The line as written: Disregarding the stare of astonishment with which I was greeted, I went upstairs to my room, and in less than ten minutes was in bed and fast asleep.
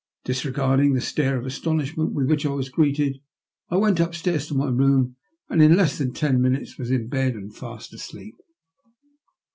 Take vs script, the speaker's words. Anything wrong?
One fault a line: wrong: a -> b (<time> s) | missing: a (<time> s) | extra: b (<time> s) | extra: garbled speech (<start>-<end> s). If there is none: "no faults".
no faults